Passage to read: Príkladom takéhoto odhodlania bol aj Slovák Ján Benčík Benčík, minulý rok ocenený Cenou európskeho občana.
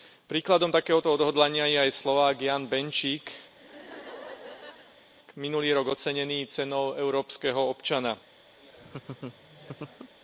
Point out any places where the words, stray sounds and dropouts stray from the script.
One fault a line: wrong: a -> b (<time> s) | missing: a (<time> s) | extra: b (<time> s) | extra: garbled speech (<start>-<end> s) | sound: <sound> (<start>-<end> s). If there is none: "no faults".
wrong: bol -> je (1.7 s)
missing: Benčík (3.3 s)
sound: laugh (3.5-5.1 s)
sound: laugh (8.6-10.1 s)